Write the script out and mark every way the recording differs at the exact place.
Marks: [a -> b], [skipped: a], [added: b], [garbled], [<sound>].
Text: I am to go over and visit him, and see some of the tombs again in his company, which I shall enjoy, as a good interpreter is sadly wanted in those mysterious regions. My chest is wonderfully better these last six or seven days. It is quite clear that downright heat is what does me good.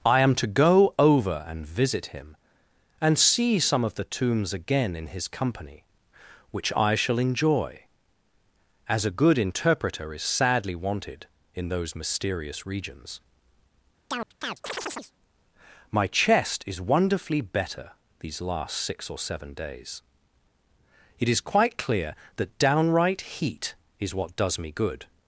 I am to go over and visit him, and see some of the tombs again in his company, which I shall enjoy, as a good interpreter is sadly wanted in those mysterious regions. [chirp] My chest is wonderfully better these last six or seven days. It is quite clear that downright heat is what does me good.